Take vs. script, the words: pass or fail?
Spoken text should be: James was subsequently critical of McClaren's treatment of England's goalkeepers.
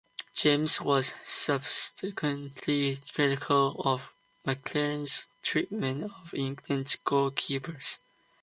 pass